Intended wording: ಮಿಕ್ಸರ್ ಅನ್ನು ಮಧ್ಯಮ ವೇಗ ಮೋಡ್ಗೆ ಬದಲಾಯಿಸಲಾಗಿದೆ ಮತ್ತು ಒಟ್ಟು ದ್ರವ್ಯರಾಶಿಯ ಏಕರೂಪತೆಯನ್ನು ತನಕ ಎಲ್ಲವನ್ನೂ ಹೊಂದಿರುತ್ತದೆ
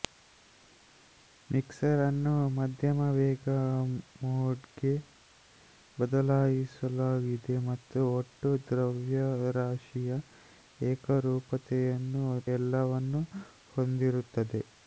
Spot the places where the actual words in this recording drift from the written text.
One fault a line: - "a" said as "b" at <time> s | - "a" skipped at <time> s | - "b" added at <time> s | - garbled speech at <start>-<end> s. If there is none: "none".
- "ತನಕ" skipped at 12.2 s